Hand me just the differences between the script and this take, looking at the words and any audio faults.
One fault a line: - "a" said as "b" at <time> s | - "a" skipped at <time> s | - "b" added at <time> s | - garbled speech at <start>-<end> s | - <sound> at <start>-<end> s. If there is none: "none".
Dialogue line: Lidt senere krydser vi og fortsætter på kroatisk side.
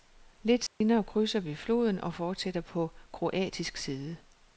- dropout at 0.7-0.8 s
- "floden" added at 1.6 s